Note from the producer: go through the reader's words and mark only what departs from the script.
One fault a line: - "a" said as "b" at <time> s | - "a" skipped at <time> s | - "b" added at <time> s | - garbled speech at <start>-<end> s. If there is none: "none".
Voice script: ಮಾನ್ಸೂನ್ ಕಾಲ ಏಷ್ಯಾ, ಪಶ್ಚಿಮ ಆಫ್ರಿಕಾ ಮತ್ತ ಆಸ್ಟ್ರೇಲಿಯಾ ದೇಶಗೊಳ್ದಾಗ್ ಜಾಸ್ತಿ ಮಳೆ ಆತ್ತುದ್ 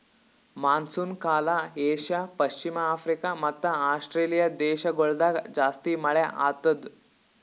none